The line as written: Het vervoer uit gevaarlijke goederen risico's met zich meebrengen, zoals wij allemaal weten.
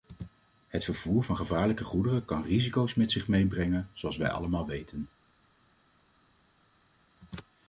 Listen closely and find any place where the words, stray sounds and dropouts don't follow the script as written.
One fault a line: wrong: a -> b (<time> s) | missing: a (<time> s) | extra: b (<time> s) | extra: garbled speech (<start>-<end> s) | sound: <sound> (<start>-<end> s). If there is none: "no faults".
wrong: uit -> van (1.2 s)
extra: kan (2.3 s)